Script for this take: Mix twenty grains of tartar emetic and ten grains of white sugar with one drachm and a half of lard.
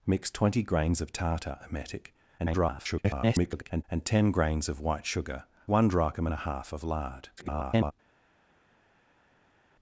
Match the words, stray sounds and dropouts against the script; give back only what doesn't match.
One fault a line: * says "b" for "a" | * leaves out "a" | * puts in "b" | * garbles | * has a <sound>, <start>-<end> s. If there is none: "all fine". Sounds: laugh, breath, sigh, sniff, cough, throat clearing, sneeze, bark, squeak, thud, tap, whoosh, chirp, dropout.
* garbles
* leaves out "with"
* garbles